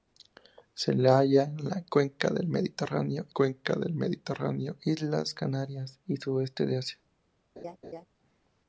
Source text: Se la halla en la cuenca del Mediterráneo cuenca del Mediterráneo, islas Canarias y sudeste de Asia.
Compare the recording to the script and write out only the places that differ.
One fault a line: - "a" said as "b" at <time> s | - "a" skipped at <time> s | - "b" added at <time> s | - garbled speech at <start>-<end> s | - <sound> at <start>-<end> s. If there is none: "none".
- laugh at 7.6-8.1 s